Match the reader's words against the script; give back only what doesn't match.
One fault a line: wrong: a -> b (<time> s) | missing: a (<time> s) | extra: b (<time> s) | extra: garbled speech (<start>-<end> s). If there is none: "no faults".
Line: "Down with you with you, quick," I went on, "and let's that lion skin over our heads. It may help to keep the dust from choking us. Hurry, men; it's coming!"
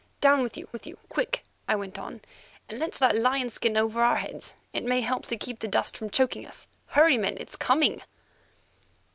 no faults